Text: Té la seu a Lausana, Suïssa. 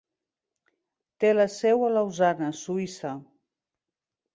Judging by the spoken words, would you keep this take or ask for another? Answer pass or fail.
pass